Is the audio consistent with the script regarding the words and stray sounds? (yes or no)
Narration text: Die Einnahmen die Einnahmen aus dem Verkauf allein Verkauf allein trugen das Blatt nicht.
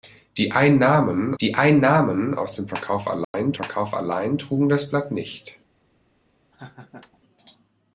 no